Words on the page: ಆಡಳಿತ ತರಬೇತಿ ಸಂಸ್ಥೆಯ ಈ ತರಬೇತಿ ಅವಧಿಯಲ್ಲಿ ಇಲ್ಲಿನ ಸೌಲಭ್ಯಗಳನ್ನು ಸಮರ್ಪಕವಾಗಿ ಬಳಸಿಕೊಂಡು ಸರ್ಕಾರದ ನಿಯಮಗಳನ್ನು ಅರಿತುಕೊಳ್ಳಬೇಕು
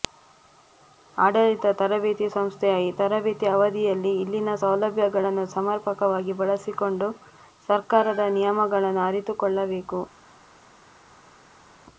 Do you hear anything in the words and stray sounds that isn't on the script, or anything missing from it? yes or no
no